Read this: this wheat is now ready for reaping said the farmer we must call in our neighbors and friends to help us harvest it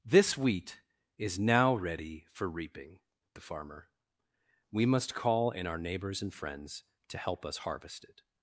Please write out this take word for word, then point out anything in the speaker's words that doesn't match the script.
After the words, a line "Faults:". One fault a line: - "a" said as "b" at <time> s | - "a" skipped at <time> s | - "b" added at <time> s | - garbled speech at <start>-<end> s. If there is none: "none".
this wheat is now ready for reaping the farmer we must call in our neighbors and friends to help us harvest it
Faults:
- "said" skipped at 3.0 s